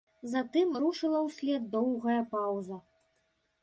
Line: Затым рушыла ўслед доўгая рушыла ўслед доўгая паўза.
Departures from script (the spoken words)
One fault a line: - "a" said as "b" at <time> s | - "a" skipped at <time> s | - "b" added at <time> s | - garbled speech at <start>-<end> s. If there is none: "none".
- "рушыла ўслед доўгая" skipped at 2.2 s